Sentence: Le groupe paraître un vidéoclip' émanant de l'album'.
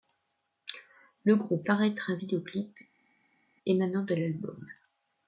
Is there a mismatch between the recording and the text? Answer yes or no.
no